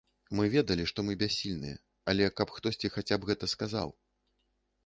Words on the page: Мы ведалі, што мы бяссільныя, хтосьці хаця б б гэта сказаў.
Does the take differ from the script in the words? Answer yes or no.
yes